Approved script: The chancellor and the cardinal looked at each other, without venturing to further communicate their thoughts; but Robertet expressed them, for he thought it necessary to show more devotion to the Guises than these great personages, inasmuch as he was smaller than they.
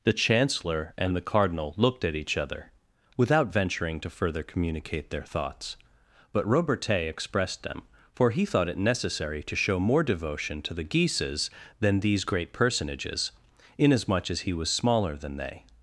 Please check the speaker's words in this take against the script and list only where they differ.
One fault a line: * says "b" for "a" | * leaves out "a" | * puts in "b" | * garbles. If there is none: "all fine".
all fine